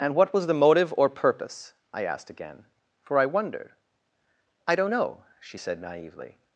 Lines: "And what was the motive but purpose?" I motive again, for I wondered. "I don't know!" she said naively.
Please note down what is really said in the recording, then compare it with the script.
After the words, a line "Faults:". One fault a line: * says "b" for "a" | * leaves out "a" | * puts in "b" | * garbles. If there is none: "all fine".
"And what was the motive or purpose?" I asked again, for I wondered. "I don't know!" she said naively.
Faults:
* says "or" for "but"
* says "asked" for "motive"